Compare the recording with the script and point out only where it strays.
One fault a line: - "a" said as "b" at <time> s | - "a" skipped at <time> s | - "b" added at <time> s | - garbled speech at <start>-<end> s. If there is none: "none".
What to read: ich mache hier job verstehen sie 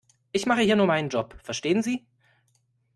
- "nur meinen" added at 0.8 s